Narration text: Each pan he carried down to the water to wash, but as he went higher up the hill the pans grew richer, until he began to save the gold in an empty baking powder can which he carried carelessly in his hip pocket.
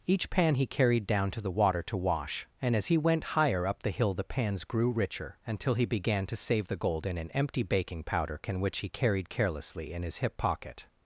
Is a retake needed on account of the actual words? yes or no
yes